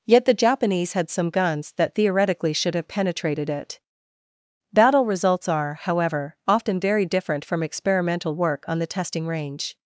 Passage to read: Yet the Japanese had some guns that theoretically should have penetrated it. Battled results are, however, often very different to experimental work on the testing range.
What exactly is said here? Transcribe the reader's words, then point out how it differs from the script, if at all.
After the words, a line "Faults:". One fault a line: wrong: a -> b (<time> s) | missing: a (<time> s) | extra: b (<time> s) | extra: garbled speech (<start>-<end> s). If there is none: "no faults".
Yet the Japanese had some guns that theoretically should have penetrated it. Battle results are, however, often very different from experimental work on the testing range.
Faults:
wrong: Battled -> Battle (4.7 s)
wrong: to -> from (7.4 s)